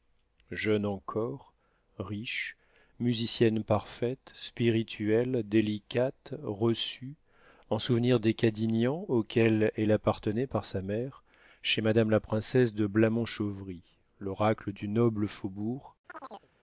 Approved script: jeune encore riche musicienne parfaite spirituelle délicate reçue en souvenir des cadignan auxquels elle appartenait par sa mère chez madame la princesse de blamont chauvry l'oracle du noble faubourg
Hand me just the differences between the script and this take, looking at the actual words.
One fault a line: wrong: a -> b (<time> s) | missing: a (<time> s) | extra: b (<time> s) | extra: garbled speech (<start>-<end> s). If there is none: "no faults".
no faults